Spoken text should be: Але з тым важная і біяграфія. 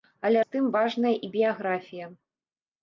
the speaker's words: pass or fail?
pass